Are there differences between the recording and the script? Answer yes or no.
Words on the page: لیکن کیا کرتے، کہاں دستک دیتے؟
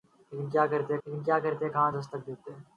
yes